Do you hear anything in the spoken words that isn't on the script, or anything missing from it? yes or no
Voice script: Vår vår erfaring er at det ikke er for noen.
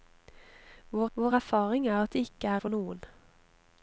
no